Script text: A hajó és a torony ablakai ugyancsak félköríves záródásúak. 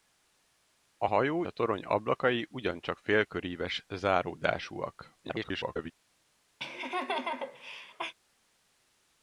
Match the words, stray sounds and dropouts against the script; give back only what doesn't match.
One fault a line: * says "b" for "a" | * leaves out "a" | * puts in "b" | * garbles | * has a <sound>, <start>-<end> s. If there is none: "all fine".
* leaves out "és"
* garbles
* has a laugh, 6.6-8.1 s